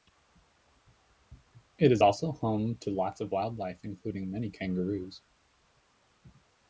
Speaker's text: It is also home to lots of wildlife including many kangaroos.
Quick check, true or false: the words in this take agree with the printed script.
true